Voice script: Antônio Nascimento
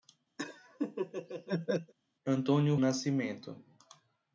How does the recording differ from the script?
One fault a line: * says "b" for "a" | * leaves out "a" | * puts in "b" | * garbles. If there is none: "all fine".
all fine